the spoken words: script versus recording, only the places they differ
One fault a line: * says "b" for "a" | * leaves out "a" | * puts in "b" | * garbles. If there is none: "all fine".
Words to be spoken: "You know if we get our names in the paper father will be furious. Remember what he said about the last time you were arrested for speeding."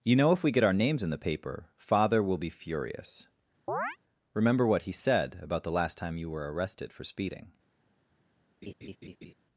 all fine